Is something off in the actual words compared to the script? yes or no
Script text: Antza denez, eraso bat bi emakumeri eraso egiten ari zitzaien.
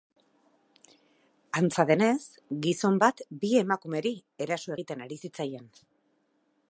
yes